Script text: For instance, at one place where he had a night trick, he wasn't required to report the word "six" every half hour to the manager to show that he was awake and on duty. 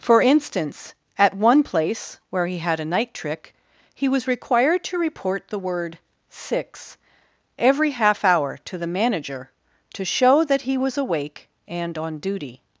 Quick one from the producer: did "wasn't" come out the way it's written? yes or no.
no